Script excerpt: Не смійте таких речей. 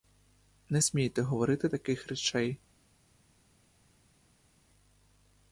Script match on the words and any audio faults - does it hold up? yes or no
no